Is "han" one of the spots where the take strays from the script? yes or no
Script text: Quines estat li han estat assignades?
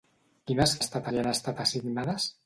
no